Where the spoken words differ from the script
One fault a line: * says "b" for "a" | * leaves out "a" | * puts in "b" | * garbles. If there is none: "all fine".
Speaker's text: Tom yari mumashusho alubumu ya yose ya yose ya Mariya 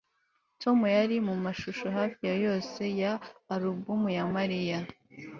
* says "hafi" for "alubumu"
* says "alubumu" for "yose"